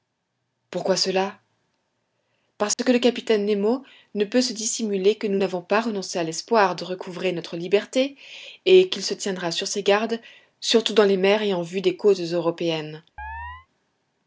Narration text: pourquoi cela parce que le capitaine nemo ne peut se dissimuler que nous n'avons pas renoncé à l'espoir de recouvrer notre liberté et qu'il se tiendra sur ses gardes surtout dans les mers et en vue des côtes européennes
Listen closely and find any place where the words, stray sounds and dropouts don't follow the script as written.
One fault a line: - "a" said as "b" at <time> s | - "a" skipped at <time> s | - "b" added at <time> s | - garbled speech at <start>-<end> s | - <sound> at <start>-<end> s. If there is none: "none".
- dropout at 2.7-2.8 s
- chirp at 13.2-13.7 s